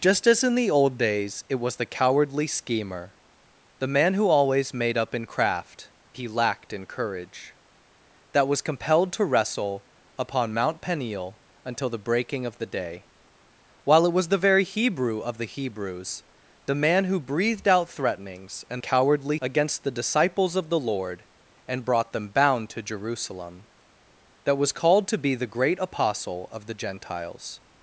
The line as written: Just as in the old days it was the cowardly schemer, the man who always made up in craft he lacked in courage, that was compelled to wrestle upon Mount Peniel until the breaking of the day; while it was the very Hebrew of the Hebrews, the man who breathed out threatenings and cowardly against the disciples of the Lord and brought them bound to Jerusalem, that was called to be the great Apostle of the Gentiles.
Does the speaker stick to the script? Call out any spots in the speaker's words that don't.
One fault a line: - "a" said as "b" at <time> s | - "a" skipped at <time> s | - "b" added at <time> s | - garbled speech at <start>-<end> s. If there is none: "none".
none